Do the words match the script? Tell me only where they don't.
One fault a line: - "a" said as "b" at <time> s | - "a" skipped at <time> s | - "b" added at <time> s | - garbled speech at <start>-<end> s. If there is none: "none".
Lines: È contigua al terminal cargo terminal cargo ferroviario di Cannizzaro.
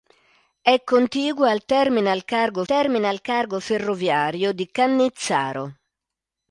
none